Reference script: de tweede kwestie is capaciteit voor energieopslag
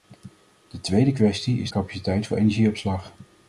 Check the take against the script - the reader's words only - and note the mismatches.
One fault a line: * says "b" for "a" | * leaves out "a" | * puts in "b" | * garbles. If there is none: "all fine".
all fine